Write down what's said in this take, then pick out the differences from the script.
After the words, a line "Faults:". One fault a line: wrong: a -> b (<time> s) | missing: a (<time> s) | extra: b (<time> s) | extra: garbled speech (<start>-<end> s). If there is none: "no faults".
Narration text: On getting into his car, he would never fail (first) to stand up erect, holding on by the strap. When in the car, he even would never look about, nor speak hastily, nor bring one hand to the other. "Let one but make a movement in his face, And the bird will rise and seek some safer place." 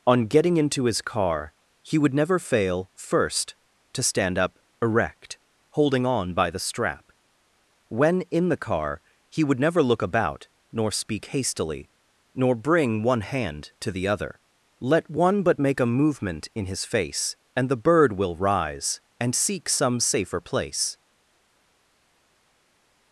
On getting into his car, he would never fail (first) to stand up erect, holding on by the strap. When in the car, he would never look about, nor speak hastily, nor bring one hand to the other. "Let one but make a movement in his face, And the bird will rise and seek some safer place."
Faults:
missing: even (9.4 s)